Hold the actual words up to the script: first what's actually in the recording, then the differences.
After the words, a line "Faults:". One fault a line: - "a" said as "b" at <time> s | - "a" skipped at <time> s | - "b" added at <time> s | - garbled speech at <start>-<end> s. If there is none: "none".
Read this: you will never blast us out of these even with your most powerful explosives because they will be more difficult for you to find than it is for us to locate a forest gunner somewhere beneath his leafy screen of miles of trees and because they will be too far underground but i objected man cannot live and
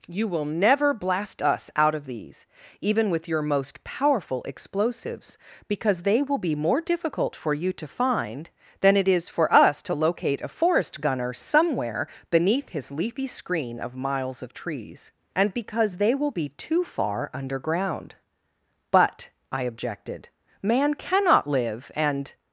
you will never blast us out of these even with your most powerful explosives because they will be more difficult for you to find than it is for us to locate a forest gunner somewhere beneath his leafy screen of miles of trees and because they will be too far underground but i objected man cannot live and
Faults:
none